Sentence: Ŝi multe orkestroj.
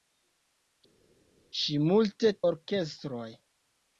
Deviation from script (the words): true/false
false